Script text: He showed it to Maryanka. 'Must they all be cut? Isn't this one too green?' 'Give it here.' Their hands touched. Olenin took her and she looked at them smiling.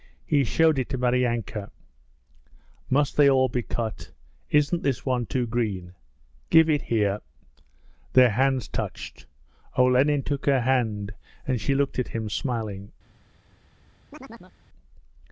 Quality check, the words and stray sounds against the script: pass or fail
fail